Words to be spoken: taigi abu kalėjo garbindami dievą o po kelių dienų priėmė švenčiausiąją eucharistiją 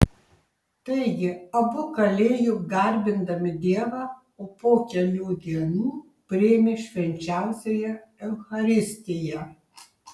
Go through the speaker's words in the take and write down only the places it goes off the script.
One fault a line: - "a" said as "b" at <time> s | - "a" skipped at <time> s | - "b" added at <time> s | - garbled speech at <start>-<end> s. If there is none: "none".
none